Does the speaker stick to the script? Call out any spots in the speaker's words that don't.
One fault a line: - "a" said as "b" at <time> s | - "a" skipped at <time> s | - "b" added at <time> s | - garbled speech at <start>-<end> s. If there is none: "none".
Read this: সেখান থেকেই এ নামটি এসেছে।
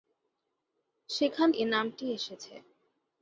- "থেকেই" skipped at 1.5 s